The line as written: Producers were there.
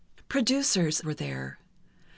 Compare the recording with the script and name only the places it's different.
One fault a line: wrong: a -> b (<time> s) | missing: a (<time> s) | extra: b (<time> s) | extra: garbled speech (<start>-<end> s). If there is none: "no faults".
no faults